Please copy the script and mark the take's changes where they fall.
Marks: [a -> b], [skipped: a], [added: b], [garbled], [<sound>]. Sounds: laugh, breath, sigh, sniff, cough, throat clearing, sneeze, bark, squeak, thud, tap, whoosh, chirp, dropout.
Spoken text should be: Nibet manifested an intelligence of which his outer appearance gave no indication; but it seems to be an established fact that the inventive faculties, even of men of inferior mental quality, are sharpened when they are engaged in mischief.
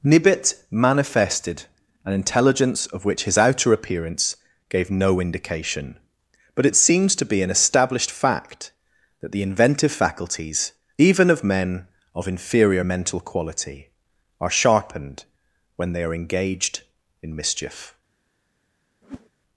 Nibet manifested an intelligence of which his outer appearance gave no indication; but it seems to be an established fact that the inventive faculties, even of men of inferior mental quality, are sharpened when they are engaged in mischief. [whoosh]